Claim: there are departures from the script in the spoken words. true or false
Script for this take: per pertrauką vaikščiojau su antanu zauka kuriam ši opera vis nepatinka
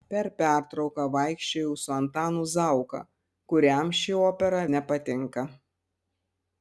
true